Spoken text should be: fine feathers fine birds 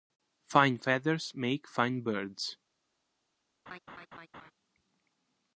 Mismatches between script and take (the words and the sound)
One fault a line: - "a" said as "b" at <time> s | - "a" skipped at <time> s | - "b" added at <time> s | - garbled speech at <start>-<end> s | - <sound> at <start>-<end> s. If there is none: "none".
- "make" added at 1.4 s
- laugh at 3.7-4.5 s